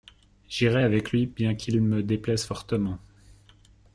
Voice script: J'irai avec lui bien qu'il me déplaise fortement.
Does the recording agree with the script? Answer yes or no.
yes